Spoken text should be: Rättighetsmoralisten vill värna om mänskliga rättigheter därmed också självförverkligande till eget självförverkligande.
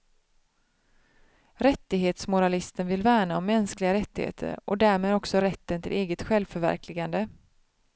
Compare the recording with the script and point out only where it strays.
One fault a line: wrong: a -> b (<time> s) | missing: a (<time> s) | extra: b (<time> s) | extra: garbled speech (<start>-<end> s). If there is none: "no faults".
extra: och (4.7 s)
wrong: självförverkligande -> rätten (5.4 s)